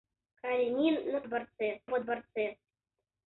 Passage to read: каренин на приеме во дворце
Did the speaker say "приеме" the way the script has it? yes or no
no